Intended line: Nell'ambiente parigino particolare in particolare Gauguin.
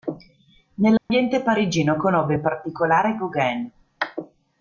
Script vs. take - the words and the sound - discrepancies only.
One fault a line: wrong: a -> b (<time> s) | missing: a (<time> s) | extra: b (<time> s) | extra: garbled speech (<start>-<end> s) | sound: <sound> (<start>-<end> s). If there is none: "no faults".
sound: dropout (1.0-1.1 s)
wrong: particolare -> conobbe (1.9 s)